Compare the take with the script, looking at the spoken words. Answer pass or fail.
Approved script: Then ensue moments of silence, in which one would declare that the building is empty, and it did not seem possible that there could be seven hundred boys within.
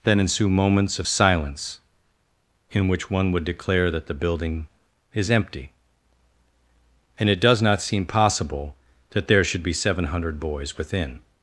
fail